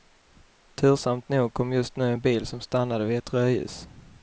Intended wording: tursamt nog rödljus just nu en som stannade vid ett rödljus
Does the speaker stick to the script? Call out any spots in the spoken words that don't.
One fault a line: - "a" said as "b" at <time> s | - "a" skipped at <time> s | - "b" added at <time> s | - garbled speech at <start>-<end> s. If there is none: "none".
- "rödljus" said as "kom" at 1.5 s
- "bil" added at 2.2 s